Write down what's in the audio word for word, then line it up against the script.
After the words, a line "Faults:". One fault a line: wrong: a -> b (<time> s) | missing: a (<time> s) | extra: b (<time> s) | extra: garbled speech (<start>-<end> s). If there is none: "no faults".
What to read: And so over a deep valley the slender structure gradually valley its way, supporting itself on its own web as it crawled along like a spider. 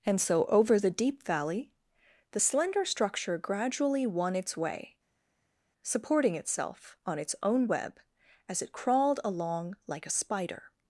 And so over the deep valley the slender structure gradually won its way, supporting itself on its own web as it crawled along like a spider.
Faults:
wrong: a -> the (0.8 s)
wrong: valley -> won (4.1 s)